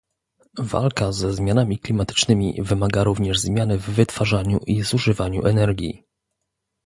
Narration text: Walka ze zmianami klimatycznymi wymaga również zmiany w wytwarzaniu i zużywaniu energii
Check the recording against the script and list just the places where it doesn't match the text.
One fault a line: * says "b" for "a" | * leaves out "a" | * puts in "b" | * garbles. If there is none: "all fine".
all fine